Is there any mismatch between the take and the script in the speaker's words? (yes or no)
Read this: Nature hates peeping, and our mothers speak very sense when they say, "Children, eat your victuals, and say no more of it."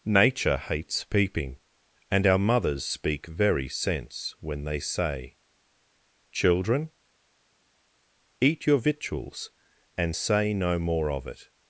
no